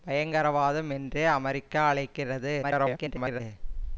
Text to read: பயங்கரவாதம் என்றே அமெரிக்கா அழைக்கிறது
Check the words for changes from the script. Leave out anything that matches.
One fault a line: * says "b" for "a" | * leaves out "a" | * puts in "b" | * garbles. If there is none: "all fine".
* garbles